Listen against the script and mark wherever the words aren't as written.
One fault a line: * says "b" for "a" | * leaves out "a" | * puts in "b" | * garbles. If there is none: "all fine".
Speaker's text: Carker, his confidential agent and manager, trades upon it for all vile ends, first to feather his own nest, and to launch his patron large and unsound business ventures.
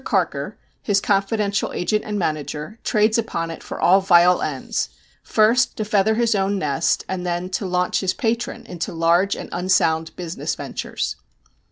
* puts in "then"
* puts in "into"